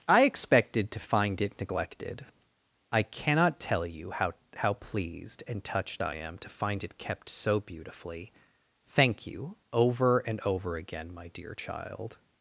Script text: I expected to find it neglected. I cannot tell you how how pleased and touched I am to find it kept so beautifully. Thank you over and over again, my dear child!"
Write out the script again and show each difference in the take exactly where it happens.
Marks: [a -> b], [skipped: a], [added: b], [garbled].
I expected to find it neglected. I cannot tell you how how pleased and touched I am to find it kept so beautifully. Thank you over and over again, my dear child!"